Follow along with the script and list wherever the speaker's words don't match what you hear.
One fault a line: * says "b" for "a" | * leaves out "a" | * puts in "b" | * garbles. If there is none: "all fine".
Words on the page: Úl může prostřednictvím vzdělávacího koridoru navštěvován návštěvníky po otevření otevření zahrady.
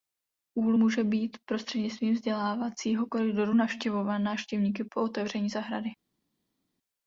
* puts in "být"
* leaves out "otevření"